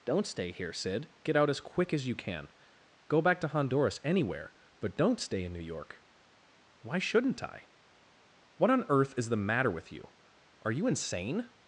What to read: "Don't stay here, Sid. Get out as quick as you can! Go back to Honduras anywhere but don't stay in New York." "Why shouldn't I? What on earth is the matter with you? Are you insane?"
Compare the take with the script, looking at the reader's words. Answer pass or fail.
pass